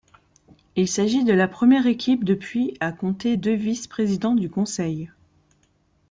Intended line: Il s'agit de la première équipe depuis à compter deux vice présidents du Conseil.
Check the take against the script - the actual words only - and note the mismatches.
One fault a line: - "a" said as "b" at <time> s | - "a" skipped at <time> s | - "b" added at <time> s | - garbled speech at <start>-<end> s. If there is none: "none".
none